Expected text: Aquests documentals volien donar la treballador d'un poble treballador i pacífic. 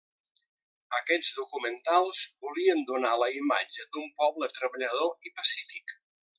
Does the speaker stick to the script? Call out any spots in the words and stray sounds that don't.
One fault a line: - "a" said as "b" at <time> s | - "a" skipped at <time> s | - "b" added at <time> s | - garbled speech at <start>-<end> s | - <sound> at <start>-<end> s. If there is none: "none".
- "treballador" said as "imatge" at 3.4 s